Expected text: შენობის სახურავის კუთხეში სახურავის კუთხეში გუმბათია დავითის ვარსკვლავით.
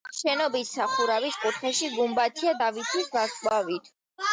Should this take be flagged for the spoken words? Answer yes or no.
yes